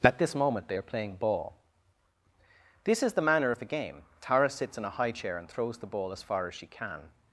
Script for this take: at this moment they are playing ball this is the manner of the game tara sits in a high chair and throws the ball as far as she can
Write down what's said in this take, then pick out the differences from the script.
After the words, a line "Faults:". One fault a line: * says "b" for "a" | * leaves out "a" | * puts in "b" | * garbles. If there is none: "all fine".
at this moment they are playing ball this is the manner of the game tara sits in a high chair and throws the ball as far as she can
Faults:
all fine